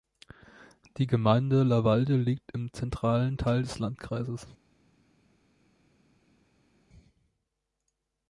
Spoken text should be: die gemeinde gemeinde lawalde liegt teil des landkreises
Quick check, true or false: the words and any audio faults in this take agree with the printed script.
false